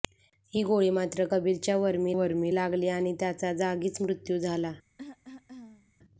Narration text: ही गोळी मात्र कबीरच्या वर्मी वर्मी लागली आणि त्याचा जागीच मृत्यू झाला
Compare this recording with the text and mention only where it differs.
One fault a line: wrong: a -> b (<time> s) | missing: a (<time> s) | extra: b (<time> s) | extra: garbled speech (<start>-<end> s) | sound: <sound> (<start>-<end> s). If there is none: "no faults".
sound: cough (5.0-5.9 s)